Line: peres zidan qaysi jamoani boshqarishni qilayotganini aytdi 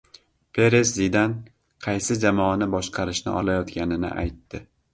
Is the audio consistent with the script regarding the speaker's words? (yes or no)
yes